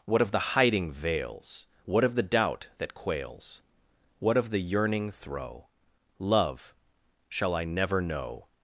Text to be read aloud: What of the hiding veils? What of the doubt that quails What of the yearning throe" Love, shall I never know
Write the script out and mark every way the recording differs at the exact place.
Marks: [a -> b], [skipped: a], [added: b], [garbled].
What of the hiding veils? What of the doubt that quails What of the yearning throe" Love, shall I never know